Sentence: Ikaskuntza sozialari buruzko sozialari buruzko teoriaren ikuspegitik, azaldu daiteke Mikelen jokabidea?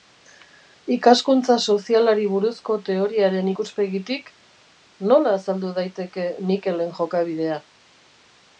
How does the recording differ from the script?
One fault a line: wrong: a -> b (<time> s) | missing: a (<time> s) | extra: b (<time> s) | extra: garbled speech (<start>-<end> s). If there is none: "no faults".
missing: sozialari buruzko (2.8 s)
extra: nola (5.1 s)